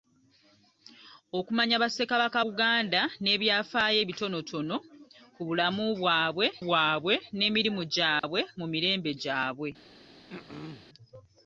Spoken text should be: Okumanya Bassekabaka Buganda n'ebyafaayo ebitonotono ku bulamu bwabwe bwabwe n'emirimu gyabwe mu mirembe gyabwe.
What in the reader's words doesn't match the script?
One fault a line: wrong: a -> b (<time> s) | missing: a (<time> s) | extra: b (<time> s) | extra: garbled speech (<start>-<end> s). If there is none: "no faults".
no faults